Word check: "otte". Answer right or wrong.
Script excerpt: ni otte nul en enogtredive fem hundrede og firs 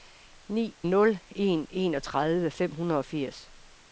wrong